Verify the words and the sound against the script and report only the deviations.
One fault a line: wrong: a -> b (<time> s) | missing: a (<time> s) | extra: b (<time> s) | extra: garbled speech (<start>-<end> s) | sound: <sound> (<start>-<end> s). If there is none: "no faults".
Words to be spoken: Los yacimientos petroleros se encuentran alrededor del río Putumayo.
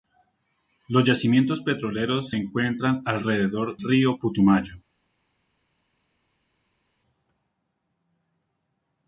missing: del (3.8 s)